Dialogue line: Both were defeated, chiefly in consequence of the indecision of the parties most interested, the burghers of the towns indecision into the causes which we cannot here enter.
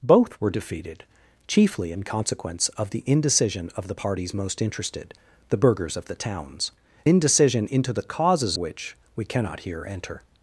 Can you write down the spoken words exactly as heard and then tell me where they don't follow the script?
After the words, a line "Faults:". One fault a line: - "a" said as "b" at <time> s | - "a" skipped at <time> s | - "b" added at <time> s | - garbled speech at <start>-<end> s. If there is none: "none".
Both were defeated, chiefly in consequence of the indecision of the parties most interested, the burghers of the towns indecision into the causes which we cannot here enter.
Faults:
none